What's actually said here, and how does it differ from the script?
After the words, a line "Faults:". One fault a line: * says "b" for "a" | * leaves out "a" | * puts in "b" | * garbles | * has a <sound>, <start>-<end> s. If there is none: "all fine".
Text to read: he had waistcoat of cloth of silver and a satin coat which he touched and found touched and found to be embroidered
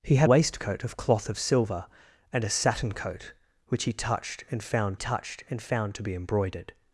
he had waistcoat of cloth of silver and a satin coat which he touched and found touched and found to be embroidered
Faults:
all fine